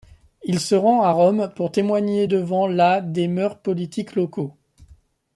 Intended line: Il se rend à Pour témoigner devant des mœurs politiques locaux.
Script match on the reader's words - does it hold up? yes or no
no